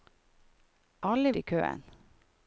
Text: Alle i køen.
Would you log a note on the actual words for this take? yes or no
no